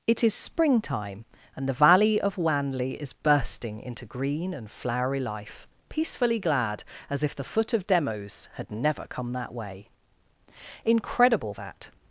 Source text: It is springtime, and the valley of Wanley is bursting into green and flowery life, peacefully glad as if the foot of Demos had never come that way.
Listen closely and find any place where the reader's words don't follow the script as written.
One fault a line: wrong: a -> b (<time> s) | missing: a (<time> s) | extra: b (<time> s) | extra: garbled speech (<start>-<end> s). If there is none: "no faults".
extra: Incredible that (10.8 s)